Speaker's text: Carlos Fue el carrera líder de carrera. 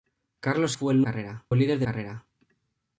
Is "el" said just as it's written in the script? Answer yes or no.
yes